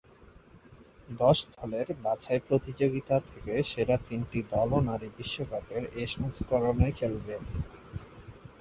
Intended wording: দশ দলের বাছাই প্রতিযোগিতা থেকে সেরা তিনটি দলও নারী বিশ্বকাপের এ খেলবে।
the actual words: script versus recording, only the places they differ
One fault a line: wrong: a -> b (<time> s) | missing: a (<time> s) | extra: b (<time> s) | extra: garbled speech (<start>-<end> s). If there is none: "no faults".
extra: সংস্করণে (6.1 s)